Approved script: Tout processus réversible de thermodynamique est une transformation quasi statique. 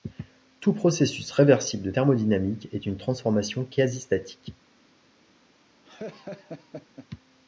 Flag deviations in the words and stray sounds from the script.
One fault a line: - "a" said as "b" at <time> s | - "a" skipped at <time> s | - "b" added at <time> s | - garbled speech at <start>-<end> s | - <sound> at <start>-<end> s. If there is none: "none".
- laugh at 5.8-7.1 s